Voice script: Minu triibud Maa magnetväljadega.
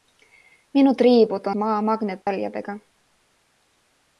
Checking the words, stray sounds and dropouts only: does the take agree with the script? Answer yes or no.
no